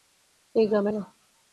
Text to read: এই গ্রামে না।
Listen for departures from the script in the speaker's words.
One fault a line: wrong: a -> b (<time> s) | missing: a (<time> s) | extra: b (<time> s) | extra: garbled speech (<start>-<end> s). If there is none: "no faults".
no faults